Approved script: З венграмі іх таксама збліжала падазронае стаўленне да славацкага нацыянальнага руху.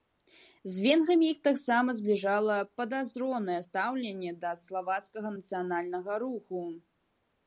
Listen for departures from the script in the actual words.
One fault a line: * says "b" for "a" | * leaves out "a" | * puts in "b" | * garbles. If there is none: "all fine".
all fine